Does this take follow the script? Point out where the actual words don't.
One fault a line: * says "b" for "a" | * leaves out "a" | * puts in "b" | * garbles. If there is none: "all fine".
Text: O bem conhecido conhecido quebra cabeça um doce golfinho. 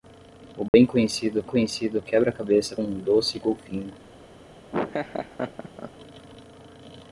all fine